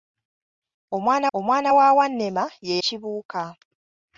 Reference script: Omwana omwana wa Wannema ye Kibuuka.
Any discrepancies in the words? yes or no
no